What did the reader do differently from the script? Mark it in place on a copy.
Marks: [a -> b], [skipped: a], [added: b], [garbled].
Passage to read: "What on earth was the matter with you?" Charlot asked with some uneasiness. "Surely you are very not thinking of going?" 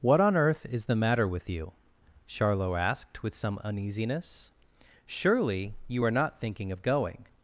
"What on earth [was -> is] the matter with you?" Charlot asked with some uneasiness. "Surely you are [skipped: very] not thinking of going?"